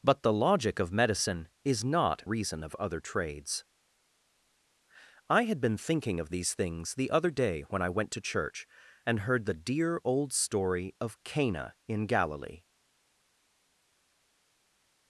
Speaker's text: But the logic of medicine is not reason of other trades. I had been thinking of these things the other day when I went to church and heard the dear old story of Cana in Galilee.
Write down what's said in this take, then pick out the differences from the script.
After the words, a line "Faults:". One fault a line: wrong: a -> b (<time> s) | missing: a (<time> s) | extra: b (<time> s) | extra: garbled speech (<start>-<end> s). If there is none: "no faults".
But the logic of medicine is not reason of other trades. I had been thinking of these things the other day when I went to church and heard the dear old story of Cana in Galilee.
Faults:
no faults